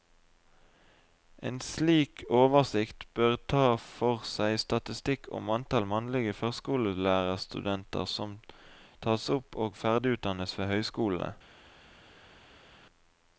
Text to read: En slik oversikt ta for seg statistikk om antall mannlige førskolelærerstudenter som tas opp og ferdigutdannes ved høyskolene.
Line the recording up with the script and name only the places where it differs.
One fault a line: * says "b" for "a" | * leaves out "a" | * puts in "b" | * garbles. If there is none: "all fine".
* puts in "bør"